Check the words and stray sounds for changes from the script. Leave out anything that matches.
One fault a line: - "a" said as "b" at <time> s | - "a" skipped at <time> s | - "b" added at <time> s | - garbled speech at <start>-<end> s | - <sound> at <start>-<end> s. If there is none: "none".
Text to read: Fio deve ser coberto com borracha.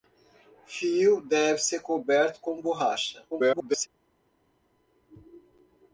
- garbled speech at 3.3-3.9 s